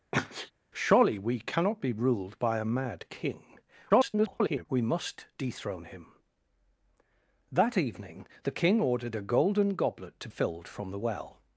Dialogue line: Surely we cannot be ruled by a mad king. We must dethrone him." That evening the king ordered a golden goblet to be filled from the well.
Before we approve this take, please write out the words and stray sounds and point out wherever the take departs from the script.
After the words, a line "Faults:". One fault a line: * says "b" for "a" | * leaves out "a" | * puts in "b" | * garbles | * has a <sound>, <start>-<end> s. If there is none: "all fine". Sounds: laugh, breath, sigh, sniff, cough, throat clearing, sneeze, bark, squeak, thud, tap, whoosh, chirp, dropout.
Surely we cannot be ruled by a mad king. [garbled] We must dethrone him." That evening the king ordered a golden goblet to filled from the well.
Faults:
* has a sneeze, 0.1-0.5 s
* garbles
* leaves out "be"